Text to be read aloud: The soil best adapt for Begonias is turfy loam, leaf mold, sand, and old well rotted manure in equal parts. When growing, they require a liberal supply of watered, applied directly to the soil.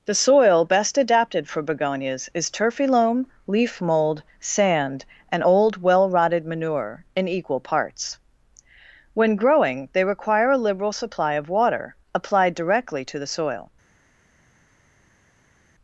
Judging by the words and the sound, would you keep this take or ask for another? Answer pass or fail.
fail